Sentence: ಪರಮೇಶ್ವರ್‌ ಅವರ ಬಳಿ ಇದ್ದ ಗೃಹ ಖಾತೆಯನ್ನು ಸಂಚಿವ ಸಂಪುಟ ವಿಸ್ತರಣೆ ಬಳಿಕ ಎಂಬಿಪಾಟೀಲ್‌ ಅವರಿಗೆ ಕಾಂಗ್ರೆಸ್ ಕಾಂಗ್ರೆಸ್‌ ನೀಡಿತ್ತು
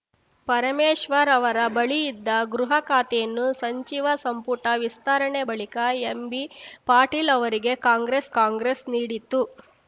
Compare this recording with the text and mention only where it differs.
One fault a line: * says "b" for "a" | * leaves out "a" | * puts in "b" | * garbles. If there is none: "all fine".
all fine